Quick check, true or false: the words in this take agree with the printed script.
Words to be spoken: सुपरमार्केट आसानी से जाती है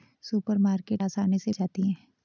true